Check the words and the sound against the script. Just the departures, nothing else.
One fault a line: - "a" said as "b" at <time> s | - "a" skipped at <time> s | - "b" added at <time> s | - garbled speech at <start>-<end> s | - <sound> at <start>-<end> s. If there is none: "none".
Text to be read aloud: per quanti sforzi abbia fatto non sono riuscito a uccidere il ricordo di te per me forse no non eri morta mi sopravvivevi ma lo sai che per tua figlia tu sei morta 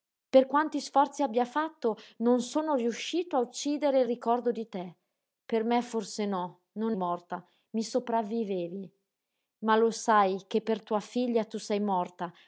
- "eri" skipped at 7.0 s